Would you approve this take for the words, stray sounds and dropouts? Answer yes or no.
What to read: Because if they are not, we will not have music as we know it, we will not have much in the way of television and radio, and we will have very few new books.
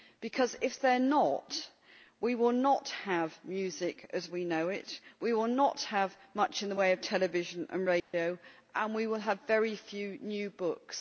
no